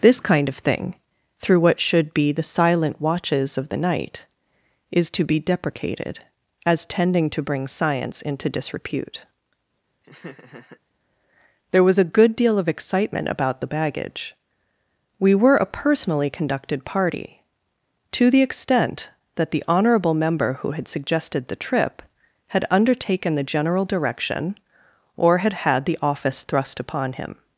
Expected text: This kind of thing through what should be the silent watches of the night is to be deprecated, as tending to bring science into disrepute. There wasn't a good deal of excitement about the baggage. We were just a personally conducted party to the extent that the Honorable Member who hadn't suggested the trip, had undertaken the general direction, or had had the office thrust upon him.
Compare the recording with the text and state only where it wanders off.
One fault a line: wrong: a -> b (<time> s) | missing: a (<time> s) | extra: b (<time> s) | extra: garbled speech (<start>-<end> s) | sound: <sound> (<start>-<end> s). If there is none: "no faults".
sound: laugh (10.0-10.8 s)
wrong: wasn't -> was (11.8 s)
missing: just (15.6 s)
wrong: hadn't -> had (20.7 s)